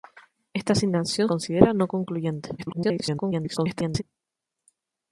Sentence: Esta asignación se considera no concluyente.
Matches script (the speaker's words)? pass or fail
fail